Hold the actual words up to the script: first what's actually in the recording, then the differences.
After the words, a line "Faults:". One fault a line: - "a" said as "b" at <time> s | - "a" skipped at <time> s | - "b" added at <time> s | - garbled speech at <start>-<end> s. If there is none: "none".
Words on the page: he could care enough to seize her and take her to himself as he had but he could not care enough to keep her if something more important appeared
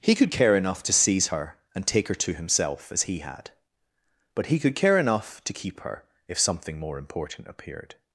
he could care enough to seize her and take her to himself as he had but he could care enough to keep her if something more important appeared
Faults:
- "not" skipped at 4.7 s